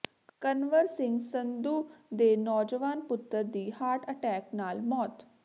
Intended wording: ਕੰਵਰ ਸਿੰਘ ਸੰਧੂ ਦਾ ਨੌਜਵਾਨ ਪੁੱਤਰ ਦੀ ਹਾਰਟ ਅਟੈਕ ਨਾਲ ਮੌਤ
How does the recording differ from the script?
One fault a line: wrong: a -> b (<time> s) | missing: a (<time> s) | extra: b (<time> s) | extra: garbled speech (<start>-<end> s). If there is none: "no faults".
wrong: ਦਾ -> ਦੇ (2.1 s)